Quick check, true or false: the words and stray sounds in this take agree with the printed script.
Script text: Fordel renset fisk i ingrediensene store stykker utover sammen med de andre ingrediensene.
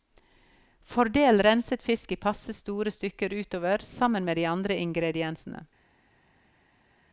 false